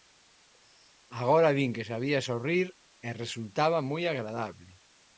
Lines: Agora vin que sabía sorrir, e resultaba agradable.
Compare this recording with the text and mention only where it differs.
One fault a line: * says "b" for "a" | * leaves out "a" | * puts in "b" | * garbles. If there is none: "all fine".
* puts in "moi"